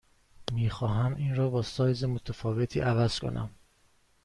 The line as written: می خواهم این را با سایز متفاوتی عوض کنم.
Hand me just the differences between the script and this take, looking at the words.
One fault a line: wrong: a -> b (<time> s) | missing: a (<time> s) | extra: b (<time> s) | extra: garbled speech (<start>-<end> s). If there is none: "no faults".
no faults